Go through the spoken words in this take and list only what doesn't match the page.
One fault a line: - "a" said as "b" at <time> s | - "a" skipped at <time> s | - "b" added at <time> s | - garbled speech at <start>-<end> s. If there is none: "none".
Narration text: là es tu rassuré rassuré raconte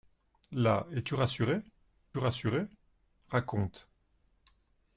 none